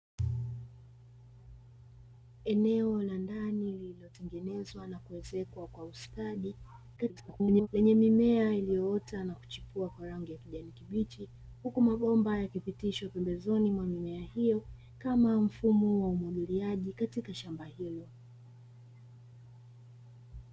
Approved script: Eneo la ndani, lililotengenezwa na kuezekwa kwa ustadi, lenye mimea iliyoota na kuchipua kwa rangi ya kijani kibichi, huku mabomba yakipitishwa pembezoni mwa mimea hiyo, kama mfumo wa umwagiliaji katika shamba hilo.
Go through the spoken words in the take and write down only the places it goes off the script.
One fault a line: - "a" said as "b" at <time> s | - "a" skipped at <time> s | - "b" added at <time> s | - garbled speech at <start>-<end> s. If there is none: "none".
- garbled speech at 7.0-7.7 s